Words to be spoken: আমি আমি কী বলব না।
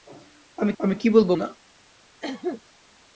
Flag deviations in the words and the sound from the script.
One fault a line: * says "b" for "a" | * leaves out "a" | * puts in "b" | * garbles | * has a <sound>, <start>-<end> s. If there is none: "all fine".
* has a cough, 2.2-2.6 s